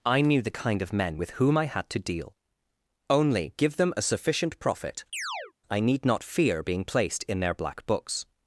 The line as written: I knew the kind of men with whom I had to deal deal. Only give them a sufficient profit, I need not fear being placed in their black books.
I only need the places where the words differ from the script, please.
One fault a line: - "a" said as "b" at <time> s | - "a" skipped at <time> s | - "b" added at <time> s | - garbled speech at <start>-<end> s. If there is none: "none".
- "deal" skipped at 2.3 s